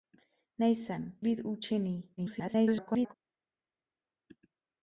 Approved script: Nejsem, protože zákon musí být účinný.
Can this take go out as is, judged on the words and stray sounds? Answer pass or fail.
fail